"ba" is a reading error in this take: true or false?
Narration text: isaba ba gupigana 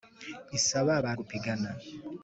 false